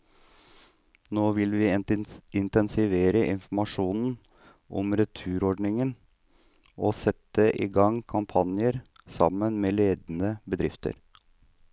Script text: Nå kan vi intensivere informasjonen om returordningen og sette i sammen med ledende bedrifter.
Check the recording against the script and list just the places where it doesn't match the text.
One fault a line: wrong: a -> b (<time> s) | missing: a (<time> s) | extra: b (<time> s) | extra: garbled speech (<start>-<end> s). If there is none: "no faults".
wrong: kan -> vil (1.4 s)
extra: gang kampanjer (7.8 s)